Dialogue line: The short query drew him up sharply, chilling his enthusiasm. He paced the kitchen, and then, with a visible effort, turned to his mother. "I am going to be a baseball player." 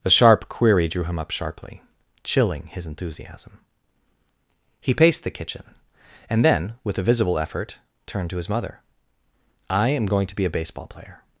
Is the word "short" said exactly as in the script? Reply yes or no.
no